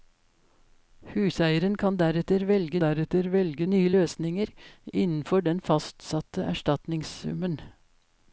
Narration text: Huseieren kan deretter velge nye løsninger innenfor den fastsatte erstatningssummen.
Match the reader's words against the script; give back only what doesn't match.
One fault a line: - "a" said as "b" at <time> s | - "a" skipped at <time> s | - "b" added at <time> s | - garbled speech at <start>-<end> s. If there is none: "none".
- "deretter velge" added at 2.8 s